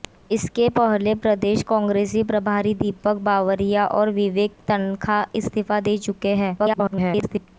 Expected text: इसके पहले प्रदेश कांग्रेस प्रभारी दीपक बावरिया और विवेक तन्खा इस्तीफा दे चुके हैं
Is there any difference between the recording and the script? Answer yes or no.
yes